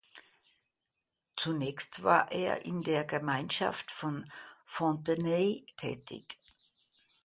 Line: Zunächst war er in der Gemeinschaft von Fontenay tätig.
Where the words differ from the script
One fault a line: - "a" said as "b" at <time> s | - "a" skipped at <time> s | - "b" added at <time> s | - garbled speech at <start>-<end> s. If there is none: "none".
none